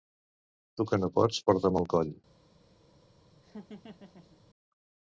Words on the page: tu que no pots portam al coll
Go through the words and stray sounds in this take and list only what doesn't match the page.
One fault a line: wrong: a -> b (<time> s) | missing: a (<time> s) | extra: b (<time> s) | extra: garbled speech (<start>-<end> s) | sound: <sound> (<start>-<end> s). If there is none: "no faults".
sound: laugh (3.4-4.4 s)